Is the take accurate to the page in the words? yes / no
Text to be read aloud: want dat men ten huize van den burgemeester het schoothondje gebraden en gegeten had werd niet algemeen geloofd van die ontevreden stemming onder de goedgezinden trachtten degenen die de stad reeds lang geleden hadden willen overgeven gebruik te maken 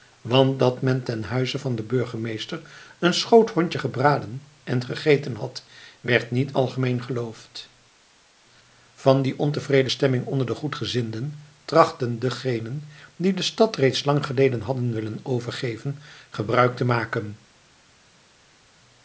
no